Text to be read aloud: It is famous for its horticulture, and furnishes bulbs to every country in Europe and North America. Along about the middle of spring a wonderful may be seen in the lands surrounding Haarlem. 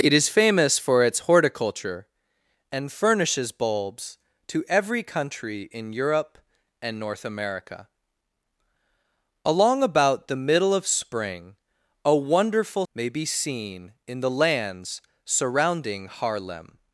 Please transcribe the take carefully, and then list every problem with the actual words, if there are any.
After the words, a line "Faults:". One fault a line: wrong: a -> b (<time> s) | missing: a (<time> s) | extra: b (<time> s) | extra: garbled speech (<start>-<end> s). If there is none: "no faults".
It is famous for its horticulture, and furnishes bulbs to every country in Europe and North America. Along about the middle of spring a wonderful may be seen in the lands surrounding Haarlem.
Faults:
no faults